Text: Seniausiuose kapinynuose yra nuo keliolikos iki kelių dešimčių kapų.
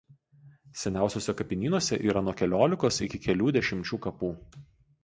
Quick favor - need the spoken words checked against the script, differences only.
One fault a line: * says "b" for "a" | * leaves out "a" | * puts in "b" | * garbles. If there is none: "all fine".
all fine